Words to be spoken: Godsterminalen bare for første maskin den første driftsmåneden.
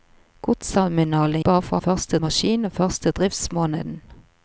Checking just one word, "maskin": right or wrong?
right